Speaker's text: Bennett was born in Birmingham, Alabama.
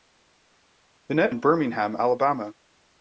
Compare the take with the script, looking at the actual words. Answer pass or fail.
fail